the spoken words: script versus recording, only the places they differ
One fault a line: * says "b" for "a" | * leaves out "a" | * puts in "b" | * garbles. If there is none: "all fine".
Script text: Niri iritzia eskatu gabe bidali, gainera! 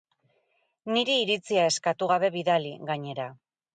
all fine